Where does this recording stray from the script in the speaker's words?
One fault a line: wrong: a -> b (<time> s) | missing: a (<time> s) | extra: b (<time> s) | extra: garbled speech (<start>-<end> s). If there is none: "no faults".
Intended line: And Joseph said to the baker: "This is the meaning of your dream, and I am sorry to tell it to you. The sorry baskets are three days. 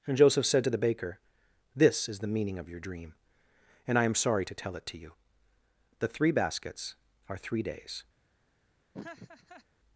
wrong: sorry -> three (6.1 s)